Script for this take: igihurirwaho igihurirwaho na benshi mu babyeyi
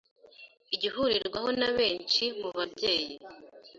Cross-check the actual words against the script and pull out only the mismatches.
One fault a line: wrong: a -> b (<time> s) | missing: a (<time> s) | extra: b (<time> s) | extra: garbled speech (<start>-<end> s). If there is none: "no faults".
missing: igihurirwaho (1.5 s)